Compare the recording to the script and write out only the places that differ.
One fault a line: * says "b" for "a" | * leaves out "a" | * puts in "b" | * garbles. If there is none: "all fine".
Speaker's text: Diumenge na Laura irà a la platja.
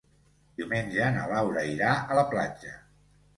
all fine